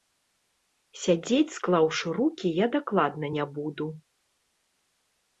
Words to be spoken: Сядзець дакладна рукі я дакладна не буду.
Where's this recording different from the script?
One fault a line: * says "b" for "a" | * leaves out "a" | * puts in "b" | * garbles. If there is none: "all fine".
* says "склаўшы" for "дакладна"